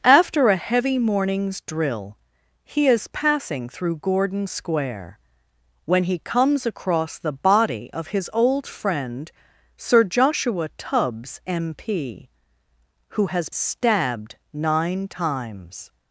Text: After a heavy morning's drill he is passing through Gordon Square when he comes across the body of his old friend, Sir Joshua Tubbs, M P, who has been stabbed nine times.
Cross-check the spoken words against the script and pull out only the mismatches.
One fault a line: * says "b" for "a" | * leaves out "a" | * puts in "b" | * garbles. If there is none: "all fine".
* leaves out "been"